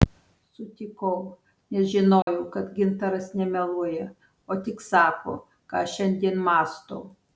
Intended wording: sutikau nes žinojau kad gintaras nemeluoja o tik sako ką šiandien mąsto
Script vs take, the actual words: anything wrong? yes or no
no